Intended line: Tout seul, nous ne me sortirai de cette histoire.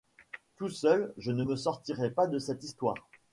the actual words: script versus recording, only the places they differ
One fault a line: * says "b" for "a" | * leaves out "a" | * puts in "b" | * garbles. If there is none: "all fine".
* says "je" for "nous"
* puts in "pas"